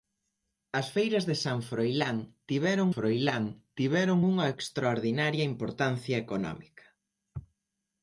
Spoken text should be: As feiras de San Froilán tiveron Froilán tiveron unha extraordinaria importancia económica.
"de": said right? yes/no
yes